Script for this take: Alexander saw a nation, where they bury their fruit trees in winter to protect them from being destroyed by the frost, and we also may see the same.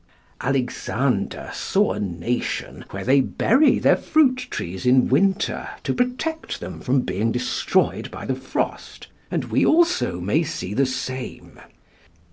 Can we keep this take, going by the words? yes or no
yes